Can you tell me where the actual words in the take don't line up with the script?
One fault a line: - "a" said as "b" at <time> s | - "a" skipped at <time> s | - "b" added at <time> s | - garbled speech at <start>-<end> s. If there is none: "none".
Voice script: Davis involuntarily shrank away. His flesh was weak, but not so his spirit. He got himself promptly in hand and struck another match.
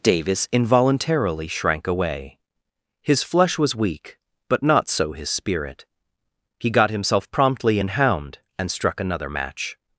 - "hand" said as "hound" at 7.9 s